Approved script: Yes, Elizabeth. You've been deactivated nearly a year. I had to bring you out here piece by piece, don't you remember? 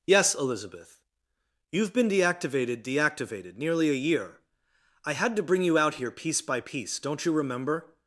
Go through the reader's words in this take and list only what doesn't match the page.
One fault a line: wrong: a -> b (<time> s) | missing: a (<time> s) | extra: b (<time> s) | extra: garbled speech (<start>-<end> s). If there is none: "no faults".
extra: deactivated (2.8 s)